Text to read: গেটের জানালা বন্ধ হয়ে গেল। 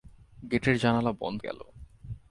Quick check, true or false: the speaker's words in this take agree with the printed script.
false